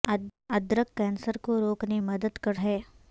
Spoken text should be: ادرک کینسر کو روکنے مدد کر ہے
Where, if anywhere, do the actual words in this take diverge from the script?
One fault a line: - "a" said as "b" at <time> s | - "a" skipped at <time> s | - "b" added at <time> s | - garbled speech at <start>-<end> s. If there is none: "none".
none